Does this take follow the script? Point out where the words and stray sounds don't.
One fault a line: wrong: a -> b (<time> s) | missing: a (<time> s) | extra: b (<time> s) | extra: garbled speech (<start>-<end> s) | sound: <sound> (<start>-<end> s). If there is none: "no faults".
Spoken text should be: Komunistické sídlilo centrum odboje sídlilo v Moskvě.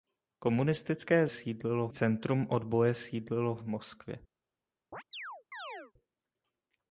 sound: chirp (4.9-5.9 s)